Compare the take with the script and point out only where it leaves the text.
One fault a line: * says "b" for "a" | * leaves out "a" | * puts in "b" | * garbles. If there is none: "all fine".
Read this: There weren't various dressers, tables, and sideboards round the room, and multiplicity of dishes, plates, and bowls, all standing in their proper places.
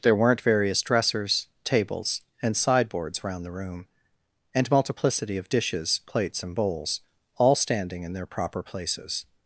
all fine